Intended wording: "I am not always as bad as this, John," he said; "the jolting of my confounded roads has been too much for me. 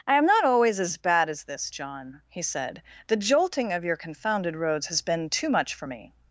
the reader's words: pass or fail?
fail